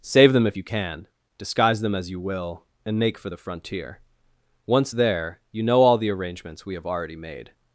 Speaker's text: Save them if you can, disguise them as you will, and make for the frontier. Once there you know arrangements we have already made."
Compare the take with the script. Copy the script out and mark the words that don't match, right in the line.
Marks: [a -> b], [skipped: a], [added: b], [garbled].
Save them if you can, disguise them as you will, and make for the frontier. Once there you know [added: all the] arrangements we have already made."